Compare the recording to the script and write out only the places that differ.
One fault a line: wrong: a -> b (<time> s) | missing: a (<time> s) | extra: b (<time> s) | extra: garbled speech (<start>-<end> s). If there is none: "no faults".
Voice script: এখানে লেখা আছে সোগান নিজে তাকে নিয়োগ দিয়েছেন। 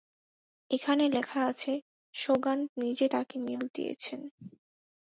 no faults